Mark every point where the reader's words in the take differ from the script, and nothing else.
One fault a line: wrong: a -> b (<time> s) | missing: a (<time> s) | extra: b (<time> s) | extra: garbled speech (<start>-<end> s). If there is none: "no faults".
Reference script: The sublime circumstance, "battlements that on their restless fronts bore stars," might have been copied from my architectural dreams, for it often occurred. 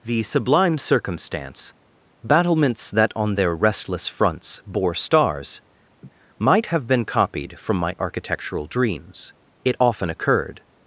missing: for (9.3 s)